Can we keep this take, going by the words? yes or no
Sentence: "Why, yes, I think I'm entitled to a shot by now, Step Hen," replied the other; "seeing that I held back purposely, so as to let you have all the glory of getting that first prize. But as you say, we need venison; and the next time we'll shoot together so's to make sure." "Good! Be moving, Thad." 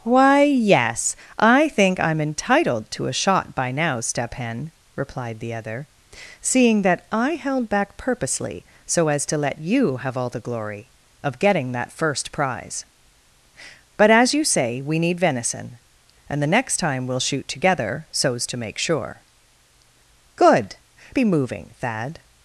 yes